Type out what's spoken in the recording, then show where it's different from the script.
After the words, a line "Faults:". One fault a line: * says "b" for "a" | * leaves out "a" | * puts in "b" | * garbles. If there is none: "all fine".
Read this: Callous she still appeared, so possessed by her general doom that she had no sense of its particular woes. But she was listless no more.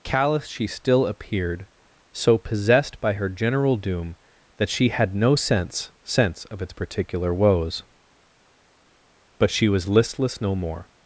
Callous she still appeared, so possessed by her general doom that she had no sense sense of its particular woes. But she was listless no more.
Faults:
* puts in "sense"